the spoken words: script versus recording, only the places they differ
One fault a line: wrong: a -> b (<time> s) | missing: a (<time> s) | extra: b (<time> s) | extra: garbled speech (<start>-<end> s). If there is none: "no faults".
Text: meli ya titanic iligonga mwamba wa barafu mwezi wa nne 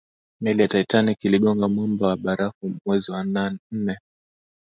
no faults